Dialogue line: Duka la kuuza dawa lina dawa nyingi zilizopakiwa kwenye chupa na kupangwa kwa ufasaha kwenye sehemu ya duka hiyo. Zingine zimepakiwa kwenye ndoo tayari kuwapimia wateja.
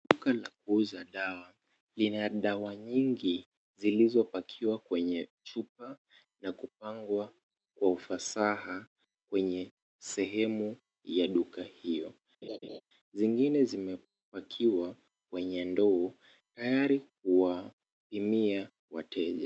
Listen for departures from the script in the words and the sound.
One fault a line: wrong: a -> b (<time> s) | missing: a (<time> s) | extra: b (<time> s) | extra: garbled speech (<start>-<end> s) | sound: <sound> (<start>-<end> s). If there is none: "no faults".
sound: laugh (12.4-12.8 s)